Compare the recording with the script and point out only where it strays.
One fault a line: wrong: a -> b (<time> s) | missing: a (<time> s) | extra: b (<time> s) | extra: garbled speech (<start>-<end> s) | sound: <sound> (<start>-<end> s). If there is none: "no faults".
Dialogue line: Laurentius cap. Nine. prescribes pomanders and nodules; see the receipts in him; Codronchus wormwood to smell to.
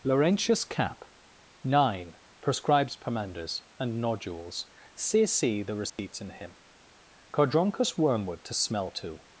extra: see (5.3 s)
sound: dropout (5.9-6.0 s)